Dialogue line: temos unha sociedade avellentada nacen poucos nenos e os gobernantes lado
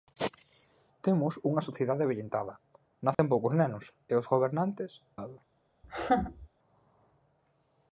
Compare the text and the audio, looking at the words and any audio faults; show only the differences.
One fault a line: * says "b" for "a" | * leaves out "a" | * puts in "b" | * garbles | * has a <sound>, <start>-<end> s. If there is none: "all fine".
* has a dropout, 3.1-3.2 s
* has a laugh, 5.8-6.5 s